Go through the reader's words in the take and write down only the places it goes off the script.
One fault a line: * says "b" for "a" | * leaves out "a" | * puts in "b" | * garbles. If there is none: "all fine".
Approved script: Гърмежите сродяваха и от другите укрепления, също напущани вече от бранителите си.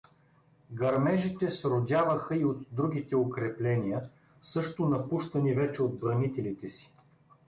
all fine